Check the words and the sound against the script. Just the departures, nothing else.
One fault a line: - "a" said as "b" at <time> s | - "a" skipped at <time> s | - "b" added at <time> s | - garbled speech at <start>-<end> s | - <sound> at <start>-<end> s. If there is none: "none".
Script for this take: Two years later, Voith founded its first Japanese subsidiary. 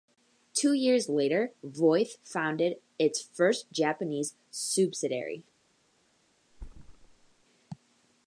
- thud at 6.5-7.4 s